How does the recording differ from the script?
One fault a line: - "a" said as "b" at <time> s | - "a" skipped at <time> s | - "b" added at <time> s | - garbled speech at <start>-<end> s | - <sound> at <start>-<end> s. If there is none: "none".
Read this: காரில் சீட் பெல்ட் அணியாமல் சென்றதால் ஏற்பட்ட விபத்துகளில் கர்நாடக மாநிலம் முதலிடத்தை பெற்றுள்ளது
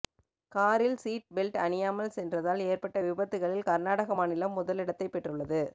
none